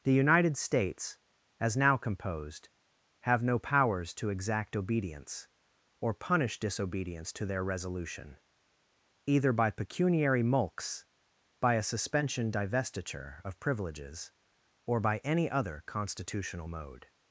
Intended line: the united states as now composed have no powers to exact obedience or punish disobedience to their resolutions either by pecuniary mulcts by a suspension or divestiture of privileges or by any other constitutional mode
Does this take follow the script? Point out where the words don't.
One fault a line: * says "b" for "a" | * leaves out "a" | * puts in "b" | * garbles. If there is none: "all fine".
* says "resolution" for "resolutions"
* leaves out "or"